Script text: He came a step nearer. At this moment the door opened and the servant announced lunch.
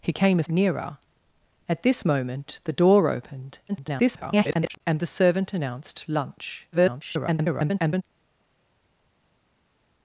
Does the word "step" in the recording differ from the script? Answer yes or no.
yes